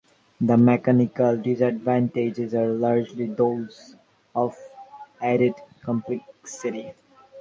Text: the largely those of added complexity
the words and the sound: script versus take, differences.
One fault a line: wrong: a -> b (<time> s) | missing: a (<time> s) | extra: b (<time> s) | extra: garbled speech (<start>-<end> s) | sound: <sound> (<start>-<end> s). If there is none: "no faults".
extra: mechanical disadvantages are (0.6 s)